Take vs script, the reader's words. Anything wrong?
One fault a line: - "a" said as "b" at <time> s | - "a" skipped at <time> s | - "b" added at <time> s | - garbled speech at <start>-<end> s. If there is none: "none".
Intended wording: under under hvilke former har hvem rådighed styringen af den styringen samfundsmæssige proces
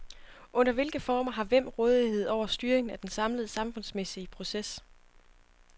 - "under" skipped at 0.7 s
- "over" added at 2.3 s
- "styringen" said as "samlede" at 3.1 s